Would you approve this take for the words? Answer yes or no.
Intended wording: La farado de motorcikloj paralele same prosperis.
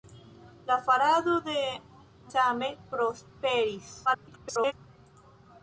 no